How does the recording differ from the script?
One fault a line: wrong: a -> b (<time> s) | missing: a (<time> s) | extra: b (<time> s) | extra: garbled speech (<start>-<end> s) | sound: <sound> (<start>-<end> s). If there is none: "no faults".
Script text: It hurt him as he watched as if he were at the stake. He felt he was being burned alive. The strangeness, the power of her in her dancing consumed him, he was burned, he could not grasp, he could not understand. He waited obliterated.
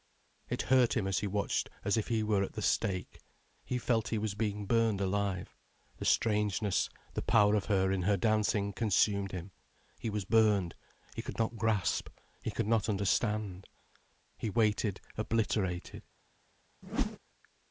sound: whoosh (16.8-17.2 s)